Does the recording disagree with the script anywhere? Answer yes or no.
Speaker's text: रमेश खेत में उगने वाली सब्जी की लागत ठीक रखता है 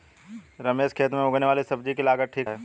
yes